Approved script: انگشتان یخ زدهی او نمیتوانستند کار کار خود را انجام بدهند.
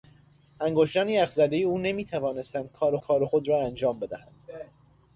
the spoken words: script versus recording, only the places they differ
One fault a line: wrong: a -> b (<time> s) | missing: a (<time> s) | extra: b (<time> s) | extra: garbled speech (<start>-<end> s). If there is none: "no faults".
no faults